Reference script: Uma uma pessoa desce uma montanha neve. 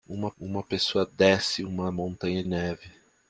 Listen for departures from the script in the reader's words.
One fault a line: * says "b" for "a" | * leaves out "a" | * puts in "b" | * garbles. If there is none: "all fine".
all fine